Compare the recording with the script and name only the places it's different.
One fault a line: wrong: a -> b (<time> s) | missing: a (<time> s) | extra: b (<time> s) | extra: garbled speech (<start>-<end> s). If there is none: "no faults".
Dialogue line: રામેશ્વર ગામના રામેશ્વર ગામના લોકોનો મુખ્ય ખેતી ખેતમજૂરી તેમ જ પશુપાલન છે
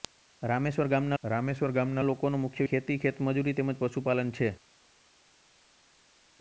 no faults